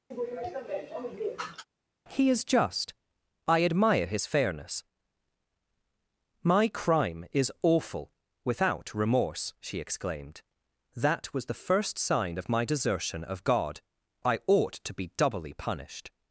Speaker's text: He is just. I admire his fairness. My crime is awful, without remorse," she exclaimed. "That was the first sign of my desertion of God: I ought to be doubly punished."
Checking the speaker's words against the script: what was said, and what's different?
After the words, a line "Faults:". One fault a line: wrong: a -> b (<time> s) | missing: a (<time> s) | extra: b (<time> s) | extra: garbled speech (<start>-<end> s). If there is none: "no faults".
He is just. I admire his fairness. My crime is awful, without remorse," she exclaimed. "That was the first sign of my desertion of God: I ought to be doubly punished."
Faults:
no faults